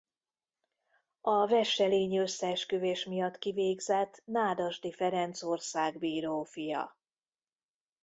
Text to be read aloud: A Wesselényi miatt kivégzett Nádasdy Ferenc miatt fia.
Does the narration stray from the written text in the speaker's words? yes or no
yes